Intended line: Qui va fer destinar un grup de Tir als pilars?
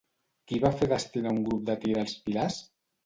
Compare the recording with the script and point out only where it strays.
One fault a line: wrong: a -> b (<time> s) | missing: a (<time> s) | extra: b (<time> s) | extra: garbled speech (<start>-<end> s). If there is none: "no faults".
no faults